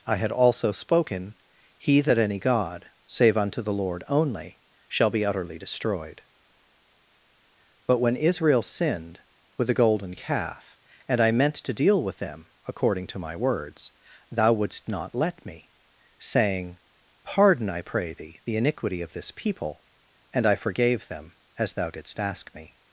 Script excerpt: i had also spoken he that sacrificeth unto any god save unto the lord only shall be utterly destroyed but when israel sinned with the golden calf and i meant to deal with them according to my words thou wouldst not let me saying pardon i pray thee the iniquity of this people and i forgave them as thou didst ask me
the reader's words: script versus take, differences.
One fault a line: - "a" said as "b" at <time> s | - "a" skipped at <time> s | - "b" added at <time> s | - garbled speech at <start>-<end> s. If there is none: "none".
- "sacrificeth unto" skipped at 2.2 s